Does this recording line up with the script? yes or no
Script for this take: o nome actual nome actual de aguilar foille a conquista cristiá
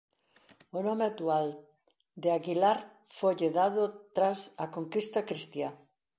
no